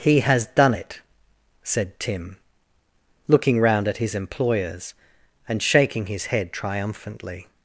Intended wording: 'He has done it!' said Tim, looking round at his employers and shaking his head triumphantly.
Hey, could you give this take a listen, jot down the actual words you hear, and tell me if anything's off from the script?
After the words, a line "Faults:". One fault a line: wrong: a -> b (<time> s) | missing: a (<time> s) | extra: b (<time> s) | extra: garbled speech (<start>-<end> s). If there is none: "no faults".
'He has done it!' said Tim, looking round at his employers and shaking his head triumphantly.
Faults:
no faults